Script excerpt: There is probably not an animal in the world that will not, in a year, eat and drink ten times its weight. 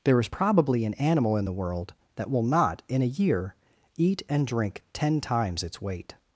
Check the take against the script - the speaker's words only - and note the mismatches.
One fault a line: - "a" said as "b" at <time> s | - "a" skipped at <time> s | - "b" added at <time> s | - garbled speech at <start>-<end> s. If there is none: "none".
- "not" skipped at 0.8 s